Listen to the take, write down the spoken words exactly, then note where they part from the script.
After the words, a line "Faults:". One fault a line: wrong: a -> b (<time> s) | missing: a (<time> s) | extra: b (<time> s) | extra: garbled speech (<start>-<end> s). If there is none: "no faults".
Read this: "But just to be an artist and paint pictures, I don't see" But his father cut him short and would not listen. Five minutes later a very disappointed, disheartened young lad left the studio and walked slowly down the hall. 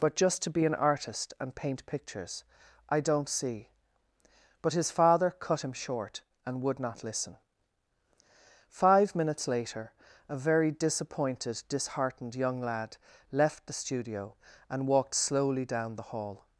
"But just to be an artist and paint pictures, I don't see" But his father cut him short and would not listen. Five minutes later a very disappointed, disheartened young lad left the studio and walked slowly down the hall.
Faults:
no faults